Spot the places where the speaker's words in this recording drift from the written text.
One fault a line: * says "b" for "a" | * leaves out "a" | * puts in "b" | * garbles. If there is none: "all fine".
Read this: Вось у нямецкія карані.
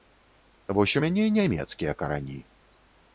* puts in "мяне"